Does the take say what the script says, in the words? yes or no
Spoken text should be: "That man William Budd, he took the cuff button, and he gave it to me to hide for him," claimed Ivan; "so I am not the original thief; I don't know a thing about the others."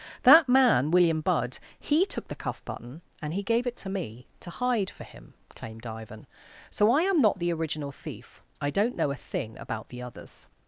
yes